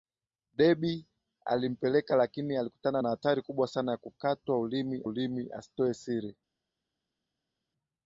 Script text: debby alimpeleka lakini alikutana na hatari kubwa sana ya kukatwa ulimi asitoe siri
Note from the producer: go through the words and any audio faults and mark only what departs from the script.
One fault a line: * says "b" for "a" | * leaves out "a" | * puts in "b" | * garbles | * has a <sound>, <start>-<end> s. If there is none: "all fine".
* puts in "ulimi"